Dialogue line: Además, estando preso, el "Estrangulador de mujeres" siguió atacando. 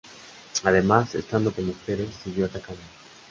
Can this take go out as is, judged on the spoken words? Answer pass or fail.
fail